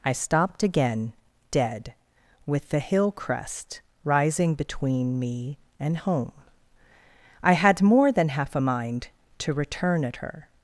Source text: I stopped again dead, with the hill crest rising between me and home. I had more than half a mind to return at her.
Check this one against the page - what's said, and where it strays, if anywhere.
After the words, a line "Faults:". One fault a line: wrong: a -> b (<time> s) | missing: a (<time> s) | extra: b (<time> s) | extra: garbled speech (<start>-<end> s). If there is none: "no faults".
I stopped again dead, with the hill crest rising between me and home. I had more than half a mind to return at her.
Faults:
no faults